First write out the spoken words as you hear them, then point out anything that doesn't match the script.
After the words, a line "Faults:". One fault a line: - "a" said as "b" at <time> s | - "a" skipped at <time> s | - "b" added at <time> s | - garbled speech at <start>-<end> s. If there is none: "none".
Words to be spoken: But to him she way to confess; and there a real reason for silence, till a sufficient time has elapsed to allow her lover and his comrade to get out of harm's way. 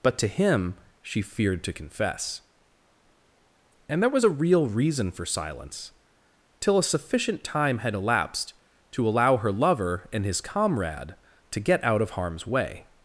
But to him she feared to confess; and there was a real reason for silence, till a sufficient time had elapsed to allow her lover and his comrade to get out of harm's way.
Faults:
- "way" said as "feared" at 1.2 s
- "was" added at 4.1 s
- "has" said as "had" at 7.8 s